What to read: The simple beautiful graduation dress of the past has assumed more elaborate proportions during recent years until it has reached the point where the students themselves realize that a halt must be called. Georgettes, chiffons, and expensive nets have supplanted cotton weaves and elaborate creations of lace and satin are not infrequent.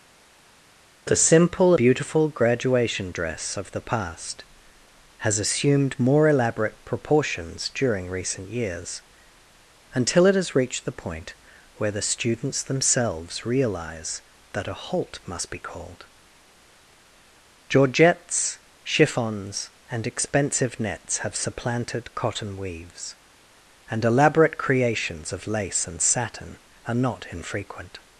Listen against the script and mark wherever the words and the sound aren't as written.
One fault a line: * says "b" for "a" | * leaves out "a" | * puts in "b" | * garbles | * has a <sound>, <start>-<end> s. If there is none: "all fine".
all fine